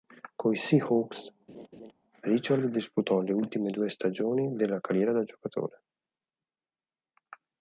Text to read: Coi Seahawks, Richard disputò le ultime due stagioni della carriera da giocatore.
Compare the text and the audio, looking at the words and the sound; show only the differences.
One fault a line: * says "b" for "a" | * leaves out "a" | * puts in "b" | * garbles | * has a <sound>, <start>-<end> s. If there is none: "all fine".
* has a laugh, 1.5-1.9 s